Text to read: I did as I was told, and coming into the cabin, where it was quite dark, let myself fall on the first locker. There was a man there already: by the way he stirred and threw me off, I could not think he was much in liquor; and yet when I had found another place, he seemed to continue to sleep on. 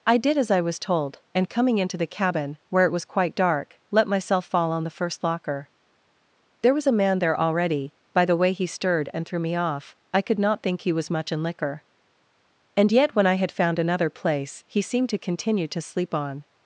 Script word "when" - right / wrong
right